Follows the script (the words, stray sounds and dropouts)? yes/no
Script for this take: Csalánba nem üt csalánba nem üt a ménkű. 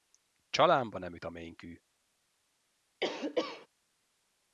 no